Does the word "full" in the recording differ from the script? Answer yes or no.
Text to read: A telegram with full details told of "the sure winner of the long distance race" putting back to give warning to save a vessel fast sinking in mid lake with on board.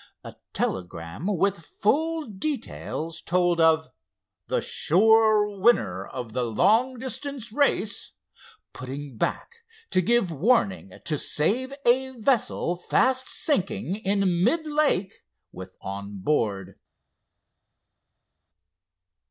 no